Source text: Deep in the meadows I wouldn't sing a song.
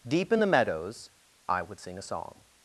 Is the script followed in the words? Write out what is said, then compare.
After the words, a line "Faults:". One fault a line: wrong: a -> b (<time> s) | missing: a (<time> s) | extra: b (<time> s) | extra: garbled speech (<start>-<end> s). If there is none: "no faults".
Deep in the meadows I would sing a song.
Faults:
wrong: wouldn't -> would (1.6 s)